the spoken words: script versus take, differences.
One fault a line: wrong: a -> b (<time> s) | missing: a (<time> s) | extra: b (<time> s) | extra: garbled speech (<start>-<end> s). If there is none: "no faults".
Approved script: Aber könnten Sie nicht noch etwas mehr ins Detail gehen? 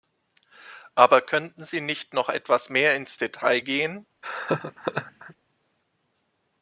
no faults